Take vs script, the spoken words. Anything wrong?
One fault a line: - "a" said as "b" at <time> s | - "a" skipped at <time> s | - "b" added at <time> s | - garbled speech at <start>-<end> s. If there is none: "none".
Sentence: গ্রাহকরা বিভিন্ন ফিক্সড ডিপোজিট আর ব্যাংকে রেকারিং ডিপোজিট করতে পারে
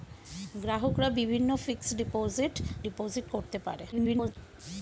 - "আর ব্যাংকে রেকারিং" skipped at 2.5 s
- garbled speech at 3.9-4.4 s